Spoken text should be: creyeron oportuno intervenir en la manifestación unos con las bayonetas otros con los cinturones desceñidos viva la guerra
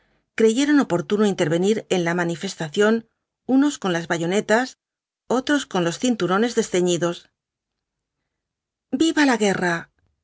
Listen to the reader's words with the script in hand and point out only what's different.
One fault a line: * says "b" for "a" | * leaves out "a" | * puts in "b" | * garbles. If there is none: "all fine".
all fine